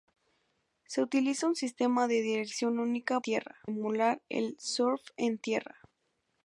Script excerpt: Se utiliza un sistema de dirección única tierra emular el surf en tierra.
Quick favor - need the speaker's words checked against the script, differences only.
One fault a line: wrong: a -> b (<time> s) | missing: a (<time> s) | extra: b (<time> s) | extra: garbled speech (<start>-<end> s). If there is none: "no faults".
no faults